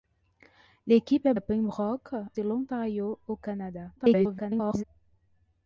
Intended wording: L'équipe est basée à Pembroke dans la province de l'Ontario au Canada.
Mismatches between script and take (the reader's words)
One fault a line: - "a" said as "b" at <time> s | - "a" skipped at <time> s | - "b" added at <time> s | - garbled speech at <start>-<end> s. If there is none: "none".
- "basée" skipped at 1.4 s
- "dans la province" skipped at 2.1 s
- garbled speech at 4.0-4.8 s